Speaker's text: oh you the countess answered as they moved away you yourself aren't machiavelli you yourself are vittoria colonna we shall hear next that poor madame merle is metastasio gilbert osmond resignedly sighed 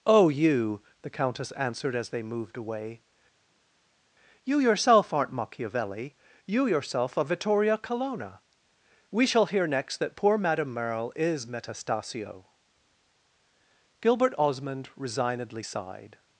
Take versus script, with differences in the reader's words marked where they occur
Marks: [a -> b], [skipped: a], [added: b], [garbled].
oh you the countess answered as they moved away you yourself aren't machiavelli you yourself are vittoria colonna we shall hear next that poor madame merle is metastasio gilbert osmond resignedly sighed